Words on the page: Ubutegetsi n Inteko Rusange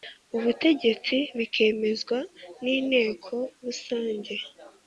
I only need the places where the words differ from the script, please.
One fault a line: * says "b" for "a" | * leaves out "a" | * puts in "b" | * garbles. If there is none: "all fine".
* puts in "bikemezwa"